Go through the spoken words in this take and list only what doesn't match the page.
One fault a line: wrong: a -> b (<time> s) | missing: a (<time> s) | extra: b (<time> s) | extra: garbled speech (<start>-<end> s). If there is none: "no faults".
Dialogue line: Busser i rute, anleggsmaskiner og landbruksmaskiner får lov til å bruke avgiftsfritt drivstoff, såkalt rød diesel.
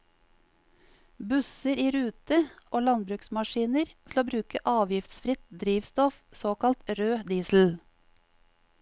missing: anleggsmaskiner (2.4 s)
missing: får lov (3.9 s)